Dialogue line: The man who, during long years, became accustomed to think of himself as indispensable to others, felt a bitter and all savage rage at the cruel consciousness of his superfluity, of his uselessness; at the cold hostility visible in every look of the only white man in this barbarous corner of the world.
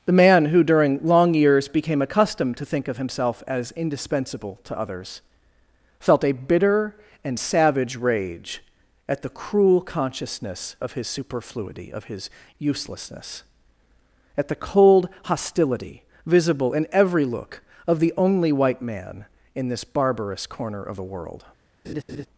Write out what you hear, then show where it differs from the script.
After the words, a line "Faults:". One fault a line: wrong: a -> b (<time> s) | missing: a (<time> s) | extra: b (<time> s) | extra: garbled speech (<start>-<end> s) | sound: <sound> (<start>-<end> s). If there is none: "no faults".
The man who, during long years, became accustomed to think of himself as indispensable to others, felt a bitter and savage rage at the cruel consciousness of his superfluity, of his uselessness; at the cold hostility visible in every look of the only white man in this barbarous corner of the world.
Faults:
missing: all (7.4 s)
sound: laugh (21.8-22.3 s)